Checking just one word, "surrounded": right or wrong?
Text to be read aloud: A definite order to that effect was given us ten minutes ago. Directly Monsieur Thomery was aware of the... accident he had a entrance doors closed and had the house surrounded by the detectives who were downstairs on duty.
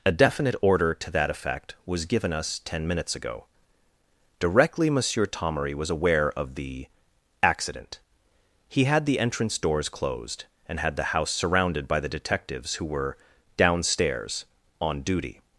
right